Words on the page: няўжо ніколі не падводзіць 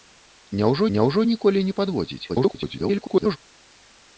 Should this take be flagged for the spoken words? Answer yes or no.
yes